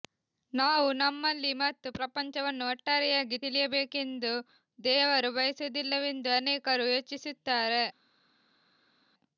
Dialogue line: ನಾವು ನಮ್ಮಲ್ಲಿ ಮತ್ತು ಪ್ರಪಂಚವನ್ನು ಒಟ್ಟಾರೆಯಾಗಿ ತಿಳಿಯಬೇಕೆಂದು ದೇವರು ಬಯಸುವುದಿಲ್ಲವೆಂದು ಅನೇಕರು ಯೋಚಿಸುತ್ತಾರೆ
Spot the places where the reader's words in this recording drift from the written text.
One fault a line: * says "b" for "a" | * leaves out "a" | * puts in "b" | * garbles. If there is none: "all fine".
all fine